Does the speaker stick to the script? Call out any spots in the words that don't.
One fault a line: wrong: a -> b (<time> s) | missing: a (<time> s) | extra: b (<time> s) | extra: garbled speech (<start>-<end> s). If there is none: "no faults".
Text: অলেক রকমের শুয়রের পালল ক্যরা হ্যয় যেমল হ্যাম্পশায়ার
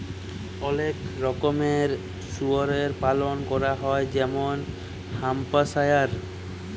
no faults